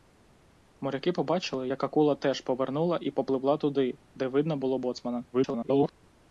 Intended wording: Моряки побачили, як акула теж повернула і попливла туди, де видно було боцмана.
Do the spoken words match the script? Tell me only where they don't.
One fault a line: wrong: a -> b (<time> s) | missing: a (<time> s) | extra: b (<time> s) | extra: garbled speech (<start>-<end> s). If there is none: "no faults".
extra: garbled speech (5.3-5.9 s)